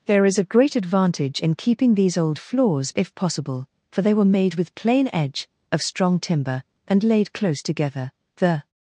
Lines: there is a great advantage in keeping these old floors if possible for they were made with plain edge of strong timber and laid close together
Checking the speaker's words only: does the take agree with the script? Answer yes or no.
no